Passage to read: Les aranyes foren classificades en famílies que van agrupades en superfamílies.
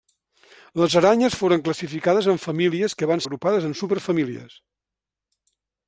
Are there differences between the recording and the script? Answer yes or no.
no